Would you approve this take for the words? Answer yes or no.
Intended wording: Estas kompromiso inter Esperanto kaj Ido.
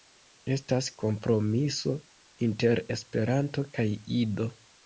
yes